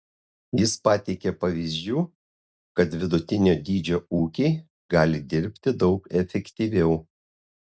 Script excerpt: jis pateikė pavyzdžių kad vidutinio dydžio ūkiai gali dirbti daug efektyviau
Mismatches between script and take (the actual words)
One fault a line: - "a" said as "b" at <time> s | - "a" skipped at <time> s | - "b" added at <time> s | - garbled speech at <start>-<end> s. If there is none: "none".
none